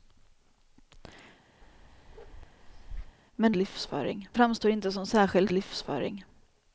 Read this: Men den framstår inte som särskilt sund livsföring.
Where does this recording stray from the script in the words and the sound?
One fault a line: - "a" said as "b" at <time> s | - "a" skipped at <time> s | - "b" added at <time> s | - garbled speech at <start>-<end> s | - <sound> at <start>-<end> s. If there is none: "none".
- bark at 1.6-3.2 s
- "den" said as "livsföring" at 3.5 s
- "sund" skipped at 5.5 s